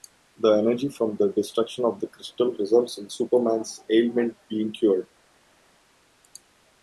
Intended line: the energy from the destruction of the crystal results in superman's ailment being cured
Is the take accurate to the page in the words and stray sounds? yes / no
yes